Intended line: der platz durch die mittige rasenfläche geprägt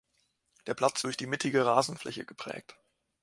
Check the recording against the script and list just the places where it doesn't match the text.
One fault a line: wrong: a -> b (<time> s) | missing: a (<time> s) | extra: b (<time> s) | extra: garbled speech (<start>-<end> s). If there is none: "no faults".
no faults